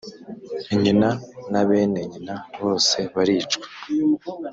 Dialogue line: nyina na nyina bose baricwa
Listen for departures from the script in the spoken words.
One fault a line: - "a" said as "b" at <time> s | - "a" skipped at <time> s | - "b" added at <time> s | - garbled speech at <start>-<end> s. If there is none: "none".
- "bene" added at 1.7 s